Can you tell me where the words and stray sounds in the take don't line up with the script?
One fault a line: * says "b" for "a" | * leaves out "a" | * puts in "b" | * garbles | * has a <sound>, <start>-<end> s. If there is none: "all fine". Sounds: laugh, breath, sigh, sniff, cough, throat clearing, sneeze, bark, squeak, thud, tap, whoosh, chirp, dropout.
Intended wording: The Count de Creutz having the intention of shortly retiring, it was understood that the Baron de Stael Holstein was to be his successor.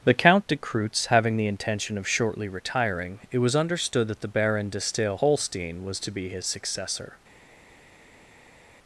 all fine